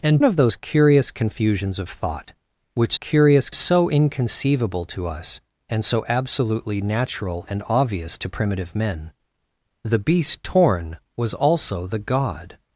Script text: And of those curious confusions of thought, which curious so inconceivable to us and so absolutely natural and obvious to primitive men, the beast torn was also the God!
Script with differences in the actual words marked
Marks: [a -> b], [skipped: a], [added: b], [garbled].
And of those curious confusions of thought, which curious so inconceivable to us and so absolutely natural and obvious to primitive men, the beast torn was also the God!